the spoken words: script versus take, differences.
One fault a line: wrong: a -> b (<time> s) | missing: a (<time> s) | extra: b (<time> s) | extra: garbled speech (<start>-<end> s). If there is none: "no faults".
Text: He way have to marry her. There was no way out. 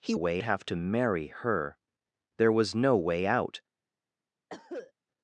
no faults